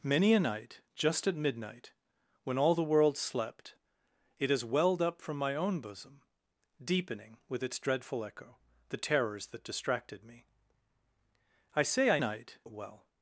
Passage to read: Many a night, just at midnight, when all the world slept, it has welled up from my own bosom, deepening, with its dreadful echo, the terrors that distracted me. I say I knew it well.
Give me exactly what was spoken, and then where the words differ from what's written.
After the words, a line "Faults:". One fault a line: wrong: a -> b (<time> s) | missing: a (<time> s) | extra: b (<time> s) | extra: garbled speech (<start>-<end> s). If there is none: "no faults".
Many a night, just at midnight, when all the world slept, it has welled up from my own bosom, deepening, with its dreadful echo, the terrors that distracted me. I say I night it well.
Faults:
wrong: knew -> night (12.2 s)